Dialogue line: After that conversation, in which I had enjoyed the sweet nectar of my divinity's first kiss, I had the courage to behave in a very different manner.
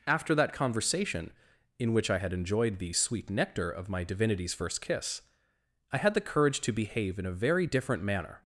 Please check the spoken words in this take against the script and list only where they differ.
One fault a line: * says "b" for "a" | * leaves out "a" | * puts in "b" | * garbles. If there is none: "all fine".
all fine